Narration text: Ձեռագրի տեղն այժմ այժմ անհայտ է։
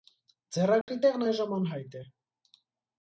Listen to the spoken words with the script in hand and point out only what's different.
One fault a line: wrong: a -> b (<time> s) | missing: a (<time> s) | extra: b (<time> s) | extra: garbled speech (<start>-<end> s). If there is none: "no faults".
missing: այժմ (1.5 s)